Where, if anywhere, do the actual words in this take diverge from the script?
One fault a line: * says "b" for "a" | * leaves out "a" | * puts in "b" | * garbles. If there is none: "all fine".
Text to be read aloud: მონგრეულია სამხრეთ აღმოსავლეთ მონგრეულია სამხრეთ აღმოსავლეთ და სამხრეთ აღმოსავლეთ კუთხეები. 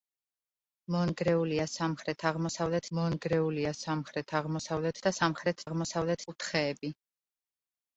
all fine